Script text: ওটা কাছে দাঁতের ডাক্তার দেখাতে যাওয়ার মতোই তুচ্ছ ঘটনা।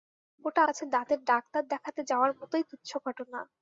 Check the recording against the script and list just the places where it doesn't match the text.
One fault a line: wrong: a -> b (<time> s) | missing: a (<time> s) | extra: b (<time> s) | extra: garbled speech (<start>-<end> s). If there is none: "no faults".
no faults